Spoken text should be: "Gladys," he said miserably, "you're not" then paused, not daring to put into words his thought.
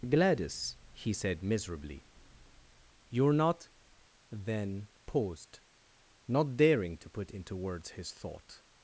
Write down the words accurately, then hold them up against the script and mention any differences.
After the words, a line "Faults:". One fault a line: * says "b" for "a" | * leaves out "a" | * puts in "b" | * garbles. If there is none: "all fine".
"Gladys," he said miserably, "you're not" then paused, not daring to put into words his thought.
Faults:
all fine